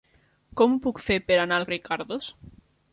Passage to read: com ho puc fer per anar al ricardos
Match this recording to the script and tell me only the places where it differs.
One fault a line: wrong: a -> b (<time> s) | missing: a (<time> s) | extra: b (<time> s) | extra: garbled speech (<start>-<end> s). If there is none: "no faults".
no faults